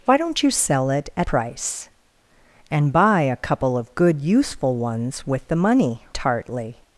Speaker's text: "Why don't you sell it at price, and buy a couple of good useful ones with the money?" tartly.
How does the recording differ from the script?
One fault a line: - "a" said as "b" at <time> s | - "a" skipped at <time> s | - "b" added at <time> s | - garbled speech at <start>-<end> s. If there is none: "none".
none